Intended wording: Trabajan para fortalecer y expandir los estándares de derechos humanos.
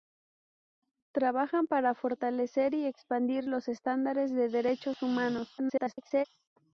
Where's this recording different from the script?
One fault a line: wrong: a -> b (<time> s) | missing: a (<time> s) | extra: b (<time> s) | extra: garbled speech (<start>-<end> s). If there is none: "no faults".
extra: garbled speech (5.6-6.3 s)